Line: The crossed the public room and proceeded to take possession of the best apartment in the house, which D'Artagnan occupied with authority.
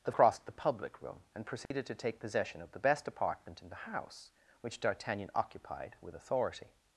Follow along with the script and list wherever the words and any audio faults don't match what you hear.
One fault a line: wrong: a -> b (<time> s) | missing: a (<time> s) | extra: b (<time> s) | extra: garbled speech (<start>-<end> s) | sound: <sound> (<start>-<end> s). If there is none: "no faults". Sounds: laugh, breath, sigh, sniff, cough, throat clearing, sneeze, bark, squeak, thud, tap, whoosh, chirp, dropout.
sound: dropout (1.7-1.7 s)